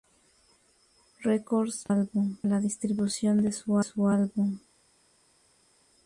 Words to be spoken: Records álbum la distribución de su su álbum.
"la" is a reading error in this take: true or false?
false